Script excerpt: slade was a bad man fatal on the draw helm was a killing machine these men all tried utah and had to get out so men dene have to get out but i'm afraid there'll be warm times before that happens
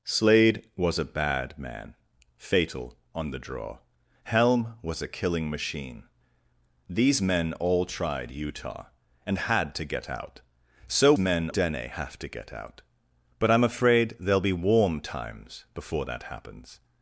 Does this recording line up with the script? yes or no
yes